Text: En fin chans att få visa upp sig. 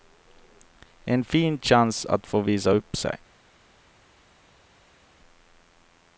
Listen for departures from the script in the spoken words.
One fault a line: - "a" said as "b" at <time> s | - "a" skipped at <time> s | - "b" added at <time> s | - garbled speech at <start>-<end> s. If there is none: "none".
none